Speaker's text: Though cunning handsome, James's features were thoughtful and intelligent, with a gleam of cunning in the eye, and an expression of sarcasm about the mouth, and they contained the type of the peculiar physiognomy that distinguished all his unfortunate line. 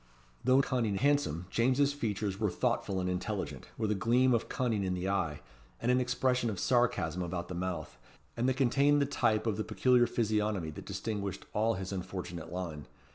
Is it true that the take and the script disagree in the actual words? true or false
false